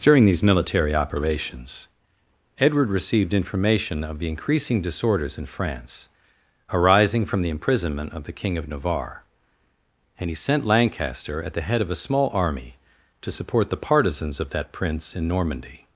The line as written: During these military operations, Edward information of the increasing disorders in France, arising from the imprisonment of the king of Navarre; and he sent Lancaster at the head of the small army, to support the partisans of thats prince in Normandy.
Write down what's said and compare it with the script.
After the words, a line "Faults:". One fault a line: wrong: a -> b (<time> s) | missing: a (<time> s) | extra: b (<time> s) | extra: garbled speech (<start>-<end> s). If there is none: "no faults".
During these military operations, Edward received information of the increasing disorders in France, arising from the imprisonment of the king of Navarre; and he sent Lancaster at the head of a small army, to support the partisans of that prince in Normandy.
Faults:
extra: received (2.9 s)
wrong: the -> a (11.9 s)
wrong: thats -> that (14.5 s)